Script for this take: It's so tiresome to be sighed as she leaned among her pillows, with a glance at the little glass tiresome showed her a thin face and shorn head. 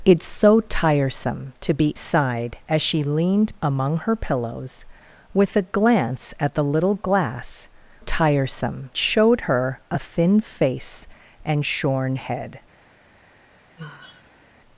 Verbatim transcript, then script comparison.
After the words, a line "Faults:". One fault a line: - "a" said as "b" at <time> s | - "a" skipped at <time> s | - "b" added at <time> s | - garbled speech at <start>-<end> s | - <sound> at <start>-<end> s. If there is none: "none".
It's so tiresome to be sighed as she leaned among her pillows, with a glance at the little glass tiresome showed her a thin face and shorn head.
Faults:
- sigh at 13.8-14.5 s